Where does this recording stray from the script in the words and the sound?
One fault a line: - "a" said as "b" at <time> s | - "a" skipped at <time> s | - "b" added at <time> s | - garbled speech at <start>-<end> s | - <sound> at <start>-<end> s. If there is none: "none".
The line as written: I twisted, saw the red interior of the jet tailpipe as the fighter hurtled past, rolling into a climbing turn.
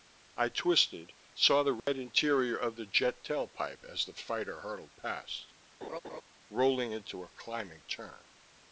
- dropout at 1.8-1.9 s
- laugh at 5.8-6.2 s